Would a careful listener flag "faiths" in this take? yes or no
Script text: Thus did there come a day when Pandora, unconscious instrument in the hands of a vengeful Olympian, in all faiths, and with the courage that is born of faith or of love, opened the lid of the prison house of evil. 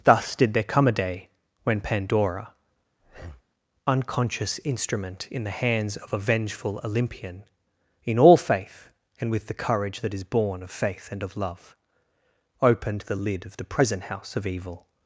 yes